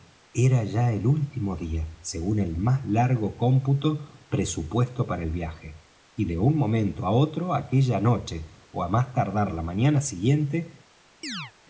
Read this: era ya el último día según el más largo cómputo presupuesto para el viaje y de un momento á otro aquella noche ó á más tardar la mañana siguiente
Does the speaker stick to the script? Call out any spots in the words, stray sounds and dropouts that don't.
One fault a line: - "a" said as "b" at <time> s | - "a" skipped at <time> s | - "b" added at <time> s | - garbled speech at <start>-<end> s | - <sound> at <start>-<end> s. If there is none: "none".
- chirp at 11.2-11.5 s